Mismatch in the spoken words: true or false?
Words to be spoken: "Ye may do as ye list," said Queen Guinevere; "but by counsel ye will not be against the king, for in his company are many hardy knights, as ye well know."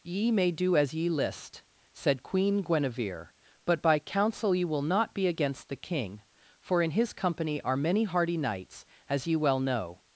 false